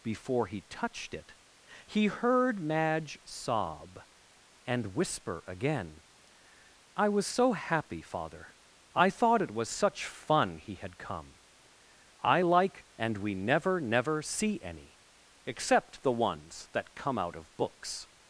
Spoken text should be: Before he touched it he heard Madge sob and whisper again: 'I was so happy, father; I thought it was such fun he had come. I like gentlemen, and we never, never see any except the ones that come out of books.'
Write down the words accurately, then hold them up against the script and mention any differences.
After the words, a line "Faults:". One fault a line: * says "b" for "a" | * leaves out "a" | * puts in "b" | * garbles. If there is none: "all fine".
Before he touched it he heard Madge sob and whisper again: 'I was so happy, father; I thought it was such fun he had come. I like and we never, never see any except the ones that come out of books.'
Faults:
* leaves out "gentlemen"